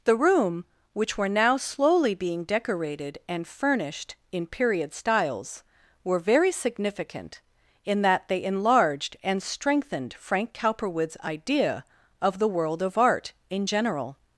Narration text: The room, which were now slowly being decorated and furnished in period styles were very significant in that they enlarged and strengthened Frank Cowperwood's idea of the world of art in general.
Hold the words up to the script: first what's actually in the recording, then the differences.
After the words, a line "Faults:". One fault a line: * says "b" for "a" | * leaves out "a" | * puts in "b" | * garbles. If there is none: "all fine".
The room, which were now slowly being decorated and furnished in period styles were very significant in that they enlarged and strengthened Frank Cowperwood's idea of the world of art in general.
Faults:
all fine